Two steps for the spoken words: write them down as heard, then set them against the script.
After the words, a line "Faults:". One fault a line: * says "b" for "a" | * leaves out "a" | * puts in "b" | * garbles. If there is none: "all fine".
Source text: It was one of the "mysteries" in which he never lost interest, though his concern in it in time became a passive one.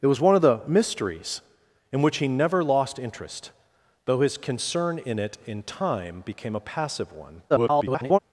It was one of the "mysteries" in which he never lost interest, though his concern in it in time became a passive one. [garbled]
Faults:
* garbles